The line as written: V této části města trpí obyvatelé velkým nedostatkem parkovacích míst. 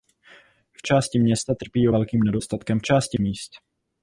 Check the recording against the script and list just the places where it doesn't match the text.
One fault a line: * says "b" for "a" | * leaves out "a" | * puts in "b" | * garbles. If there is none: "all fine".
* leaves out "této"
* leaves out "obyvatelé"
* says "části" for "parkovacích"